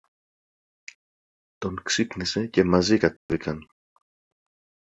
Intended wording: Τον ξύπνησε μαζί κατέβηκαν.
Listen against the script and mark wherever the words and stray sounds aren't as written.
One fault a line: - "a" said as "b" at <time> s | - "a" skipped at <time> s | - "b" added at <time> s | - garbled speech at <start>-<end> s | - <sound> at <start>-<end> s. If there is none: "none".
- "και" added at 2.5 s
- dropout at 3.2-3.3 s